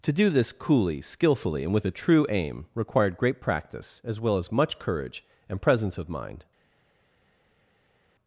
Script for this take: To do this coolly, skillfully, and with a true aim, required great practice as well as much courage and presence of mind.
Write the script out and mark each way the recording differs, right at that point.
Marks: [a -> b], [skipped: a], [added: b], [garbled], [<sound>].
To do this coolly, skillfully, and with a true aim, required great practice as well as much courage and presence of mind.